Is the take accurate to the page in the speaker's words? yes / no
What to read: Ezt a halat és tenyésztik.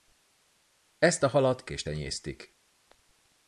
yes